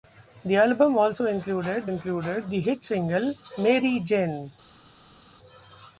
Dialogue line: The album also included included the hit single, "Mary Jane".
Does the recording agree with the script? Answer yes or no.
yes